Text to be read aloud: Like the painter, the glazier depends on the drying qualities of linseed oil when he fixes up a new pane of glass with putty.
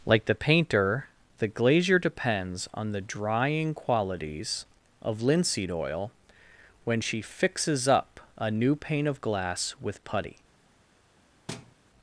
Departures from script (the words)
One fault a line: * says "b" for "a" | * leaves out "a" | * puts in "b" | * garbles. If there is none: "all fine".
* says "she" for "he"